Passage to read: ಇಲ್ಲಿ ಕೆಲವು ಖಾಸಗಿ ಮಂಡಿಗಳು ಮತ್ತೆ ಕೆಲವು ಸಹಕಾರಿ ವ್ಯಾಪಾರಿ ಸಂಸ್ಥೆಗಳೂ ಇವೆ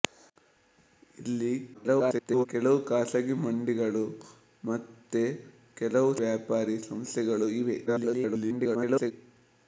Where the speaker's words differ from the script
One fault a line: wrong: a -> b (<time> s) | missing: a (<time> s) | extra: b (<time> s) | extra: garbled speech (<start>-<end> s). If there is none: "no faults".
extra: garbled speech (1.7-2.5 s)
missing: ಸಹಕಾರಿ (6.1 s)
extra: garbled speech (7.9-9.1 s)